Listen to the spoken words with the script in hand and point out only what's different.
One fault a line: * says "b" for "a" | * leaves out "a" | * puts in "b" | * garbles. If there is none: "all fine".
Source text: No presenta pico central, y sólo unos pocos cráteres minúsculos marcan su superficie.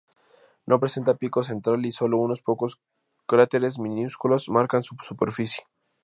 all fine